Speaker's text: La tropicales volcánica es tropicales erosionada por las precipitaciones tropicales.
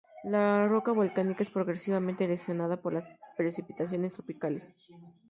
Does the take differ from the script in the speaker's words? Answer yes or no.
yes